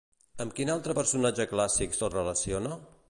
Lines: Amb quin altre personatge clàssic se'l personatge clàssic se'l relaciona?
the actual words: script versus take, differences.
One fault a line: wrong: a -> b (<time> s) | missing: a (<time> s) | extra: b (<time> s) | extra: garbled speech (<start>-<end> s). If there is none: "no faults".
missing: personatge clàssic se'l (2.1 s)